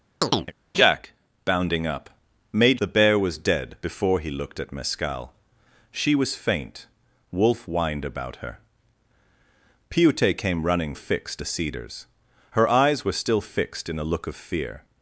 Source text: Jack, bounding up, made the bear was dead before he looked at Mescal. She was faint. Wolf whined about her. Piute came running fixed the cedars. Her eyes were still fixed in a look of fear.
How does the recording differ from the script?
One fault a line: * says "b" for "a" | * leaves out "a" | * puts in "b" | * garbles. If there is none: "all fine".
all fine